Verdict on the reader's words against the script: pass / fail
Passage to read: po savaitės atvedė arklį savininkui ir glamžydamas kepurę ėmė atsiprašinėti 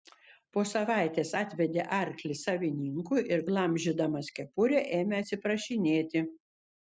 pass